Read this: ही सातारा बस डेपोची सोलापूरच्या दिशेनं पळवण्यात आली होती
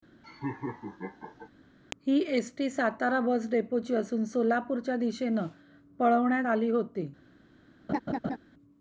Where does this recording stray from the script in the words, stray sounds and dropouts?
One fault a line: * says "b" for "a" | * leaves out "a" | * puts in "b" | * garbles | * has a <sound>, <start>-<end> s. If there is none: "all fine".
* has a laugh, 0.2-1.5 s
* puts in "एसटी"
* puts in "असून"
* has a laugh, 7.9-8.4 s